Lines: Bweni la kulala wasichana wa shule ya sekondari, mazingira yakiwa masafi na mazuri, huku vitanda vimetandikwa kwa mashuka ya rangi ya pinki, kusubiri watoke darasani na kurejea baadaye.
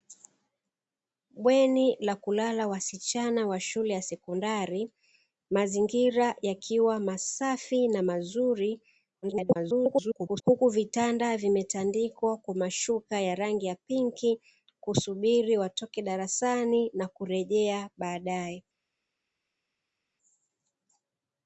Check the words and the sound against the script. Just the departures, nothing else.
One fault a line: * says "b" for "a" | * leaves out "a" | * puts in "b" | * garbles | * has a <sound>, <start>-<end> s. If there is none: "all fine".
* garbles